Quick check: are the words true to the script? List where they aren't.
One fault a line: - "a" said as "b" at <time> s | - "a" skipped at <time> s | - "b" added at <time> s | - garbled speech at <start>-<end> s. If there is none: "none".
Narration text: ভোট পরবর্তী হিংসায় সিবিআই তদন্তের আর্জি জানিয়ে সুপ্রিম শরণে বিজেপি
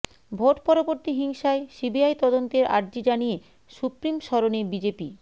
none